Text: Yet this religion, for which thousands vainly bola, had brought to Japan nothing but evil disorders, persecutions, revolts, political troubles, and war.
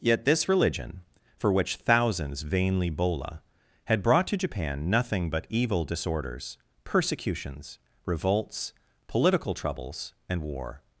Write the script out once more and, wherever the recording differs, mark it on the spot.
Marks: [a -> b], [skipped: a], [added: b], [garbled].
Yet this religion, for which thousands vainly bola, had brought to Japan nothing but evil disorders, persecutions, revolts, political troubles, and war.